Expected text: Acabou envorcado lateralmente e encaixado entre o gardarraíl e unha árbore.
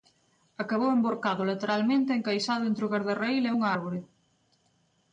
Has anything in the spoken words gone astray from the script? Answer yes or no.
no